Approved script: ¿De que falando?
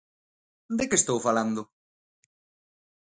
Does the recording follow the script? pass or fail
fail